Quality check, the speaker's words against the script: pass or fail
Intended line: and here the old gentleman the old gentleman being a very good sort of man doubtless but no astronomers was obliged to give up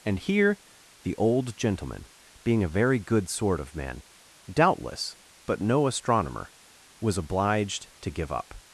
fail